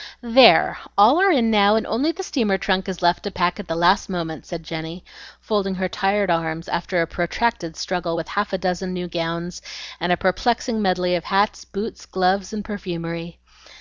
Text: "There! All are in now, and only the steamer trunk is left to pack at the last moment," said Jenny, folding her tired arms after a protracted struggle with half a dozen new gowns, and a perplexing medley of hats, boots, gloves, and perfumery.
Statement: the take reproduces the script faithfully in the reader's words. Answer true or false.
true